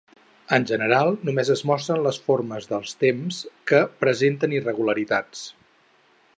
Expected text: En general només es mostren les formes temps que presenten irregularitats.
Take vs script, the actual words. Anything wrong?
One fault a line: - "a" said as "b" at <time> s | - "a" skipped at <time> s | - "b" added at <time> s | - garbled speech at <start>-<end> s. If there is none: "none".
- "dels" added at 2.7 s